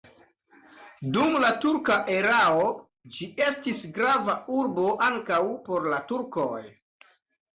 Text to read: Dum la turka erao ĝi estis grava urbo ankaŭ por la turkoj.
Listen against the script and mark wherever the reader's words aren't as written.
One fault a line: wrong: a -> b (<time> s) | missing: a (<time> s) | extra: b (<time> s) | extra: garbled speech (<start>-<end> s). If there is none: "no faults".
no faults